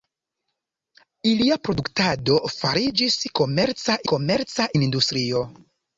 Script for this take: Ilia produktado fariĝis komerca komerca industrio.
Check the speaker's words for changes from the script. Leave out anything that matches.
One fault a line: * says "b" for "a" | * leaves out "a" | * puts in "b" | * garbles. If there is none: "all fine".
all fine